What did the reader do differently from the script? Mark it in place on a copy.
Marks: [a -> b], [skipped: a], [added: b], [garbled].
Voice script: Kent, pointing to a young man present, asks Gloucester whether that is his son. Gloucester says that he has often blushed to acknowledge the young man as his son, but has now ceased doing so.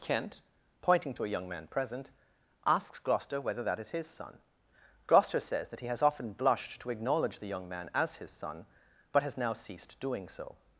Kent, pointing to a young man present, asks Gloucester whether that is his son. Gloucester says that he has often blushed to acknowledge the young man as his son, but has now ceased doing so.